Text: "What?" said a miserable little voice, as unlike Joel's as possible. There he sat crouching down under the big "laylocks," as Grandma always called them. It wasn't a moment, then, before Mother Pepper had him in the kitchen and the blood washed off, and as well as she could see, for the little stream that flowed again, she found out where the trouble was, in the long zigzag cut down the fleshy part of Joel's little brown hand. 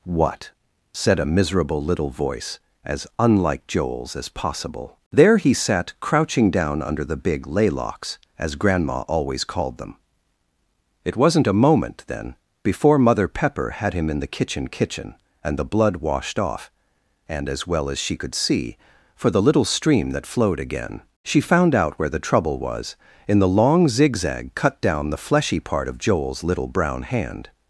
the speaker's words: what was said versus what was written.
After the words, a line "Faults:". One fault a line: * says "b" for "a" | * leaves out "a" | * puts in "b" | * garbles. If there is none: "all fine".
"What?" said a miserable little voice, as unlike Joel's as possible. There he sat crouching down under the big "laylocks," as Grandma always called them. It wasn't a moment, then, before Mother Pepper had him in the kitchen kitchen and the blood washed off, and as well as she could see, for the little stream that flowed again, she found out where the trouble was, in the long zigzag cut down the fleshy part of Joel's little brown hand.
Faults:
* puts in "kitchen"